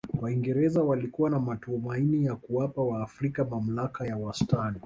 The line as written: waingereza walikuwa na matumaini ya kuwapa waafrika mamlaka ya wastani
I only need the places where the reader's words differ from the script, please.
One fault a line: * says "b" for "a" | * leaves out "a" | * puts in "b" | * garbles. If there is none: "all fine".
all fine